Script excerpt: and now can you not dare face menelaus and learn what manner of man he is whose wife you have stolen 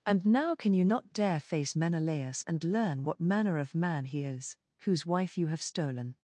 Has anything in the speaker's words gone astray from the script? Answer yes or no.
no